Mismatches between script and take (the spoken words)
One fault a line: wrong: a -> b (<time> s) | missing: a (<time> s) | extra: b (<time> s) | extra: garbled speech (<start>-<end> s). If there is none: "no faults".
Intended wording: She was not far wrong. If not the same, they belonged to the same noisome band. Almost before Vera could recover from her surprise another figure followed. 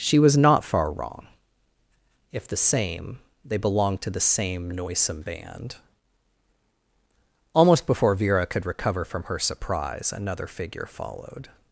missing: not (2.5 s)